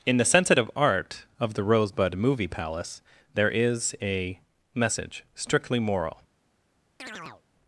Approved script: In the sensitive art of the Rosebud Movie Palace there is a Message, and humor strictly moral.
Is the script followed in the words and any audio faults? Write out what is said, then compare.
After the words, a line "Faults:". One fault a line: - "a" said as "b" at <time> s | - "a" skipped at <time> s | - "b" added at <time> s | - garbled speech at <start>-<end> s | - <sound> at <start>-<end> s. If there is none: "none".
In the sensitive art of the Rosebud Movie Palace there is a Message, strictly moral.
Faults:
- "and humor" skipped at 5.2 s
- chirp at 7.0-7.4 s